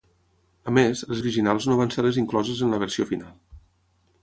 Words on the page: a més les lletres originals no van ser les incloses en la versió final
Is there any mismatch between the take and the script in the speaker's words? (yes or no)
yes